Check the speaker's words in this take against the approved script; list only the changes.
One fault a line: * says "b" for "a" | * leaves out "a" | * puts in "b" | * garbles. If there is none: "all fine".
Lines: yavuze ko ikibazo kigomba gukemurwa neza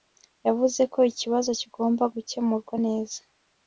all fine